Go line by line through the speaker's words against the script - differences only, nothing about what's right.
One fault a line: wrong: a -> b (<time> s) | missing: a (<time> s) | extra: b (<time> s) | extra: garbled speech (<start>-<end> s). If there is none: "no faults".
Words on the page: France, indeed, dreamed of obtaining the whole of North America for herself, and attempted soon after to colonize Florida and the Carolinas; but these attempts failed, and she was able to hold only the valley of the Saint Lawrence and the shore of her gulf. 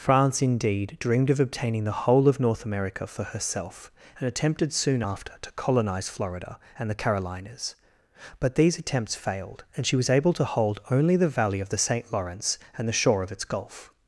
wrong: her -> its (13.3 s)